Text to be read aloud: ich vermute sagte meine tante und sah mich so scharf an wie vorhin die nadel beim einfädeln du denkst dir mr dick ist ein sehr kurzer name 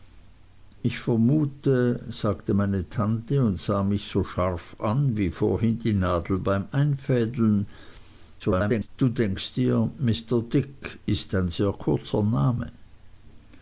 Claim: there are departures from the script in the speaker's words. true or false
true